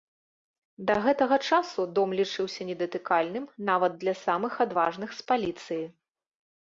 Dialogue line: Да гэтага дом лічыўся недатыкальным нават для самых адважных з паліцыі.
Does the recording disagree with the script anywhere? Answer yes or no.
yes